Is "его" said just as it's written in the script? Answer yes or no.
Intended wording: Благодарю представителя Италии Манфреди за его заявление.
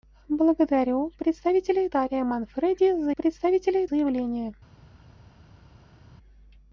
no